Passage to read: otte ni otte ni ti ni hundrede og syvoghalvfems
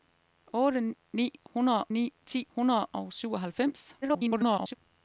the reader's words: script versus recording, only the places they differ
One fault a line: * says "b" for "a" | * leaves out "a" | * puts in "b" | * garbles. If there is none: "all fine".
* says "hundrede" for "otte"
* leaves out "ni"
* garbles